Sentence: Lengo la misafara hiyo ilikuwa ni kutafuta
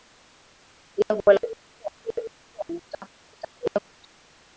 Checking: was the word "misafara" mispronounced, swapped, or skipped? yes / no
yes